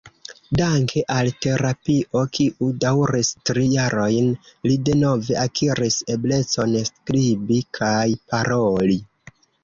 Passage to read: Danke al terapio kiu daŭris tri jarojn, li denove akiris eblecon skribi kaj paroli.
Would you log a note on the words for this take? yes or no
no